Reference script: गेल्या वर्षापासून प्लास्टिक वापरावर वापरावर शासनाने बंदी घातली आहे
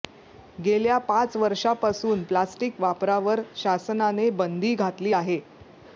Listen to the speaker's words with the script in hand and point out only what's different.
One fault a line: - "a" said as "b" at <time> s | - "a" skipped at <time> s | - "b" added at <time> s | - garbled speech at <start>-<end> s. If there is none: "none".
- "पाच" added at 1.0 s
- "वापरावर" skipped at 3.4 s